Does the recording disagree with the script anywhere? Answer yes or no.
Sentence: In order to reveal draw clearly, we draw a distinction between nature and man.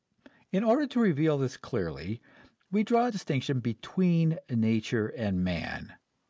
yes